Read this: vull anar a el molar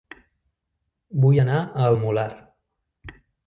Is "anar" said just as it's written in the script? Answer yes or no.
yes